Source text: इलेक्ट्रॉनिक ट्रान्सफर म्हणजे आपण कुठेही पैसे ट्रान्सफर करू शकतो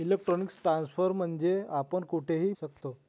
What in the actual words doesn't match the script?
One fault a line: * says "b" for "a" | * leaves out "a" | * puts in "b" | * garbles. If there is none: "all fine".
* leaves out "पैसे ट्रान्सफर करू"